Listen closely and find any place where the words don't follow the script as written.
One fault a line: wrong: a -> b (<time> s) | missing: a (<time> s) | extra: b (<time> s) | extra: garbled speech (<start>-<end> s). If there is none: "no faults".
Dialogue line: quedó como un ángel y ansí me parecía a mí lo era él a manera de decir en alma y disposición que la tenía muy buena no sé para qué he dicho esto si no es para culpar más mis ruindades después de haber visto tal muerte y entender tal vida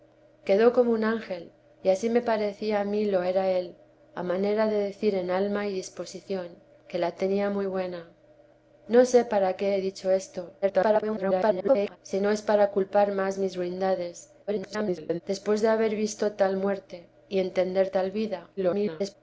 extra: garbled speech (10.6-12.0 s)
extra: garbled speech (14.5-15.2 s)
extra: garbled speech (18.6-19.2 s)